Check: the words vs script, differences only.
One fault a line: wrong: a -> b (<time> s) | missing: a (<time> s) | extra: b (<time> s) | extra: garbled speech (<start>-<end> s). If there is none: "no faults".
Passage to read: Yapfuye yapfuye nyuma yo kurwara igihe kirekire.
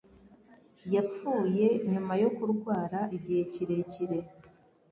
missing: yapfuye (1.7 s)